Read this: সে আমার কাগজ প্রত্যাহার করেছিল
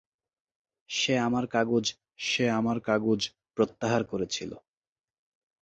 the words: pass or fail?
fail